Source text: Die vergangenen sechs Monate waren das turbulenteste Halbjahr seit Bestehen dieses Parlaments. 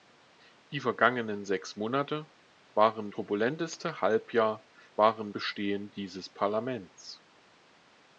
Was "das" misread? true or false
true